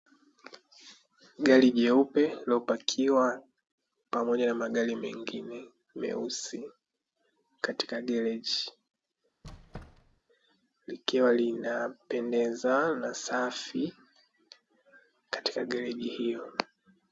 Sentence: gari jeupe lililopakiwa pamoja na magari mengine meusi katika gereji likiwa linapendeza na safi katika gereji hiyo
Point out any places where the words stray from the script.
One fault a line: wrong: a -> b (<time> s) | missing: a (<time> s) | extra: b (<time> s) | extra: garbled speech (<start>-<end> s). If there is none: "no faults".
no faults